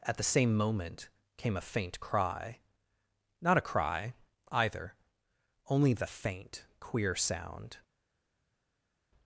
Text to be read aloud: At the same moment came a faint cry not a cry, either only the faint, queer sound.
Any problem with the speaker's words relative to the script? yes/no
no